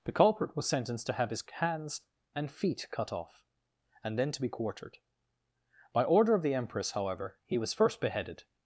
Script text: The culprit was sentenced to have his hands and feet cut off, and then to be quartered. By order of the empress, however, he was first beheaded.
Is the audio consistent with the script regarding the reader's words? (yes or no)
yes